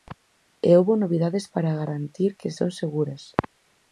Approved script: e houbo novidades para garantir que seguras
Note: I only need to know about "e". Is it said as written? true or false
true